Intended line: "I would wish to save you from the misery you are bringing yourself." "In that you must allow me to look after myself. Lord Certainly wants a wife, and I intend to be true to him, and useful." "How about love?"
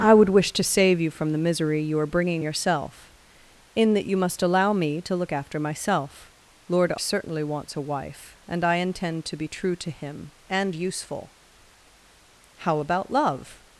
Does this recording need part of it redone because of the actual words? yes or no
no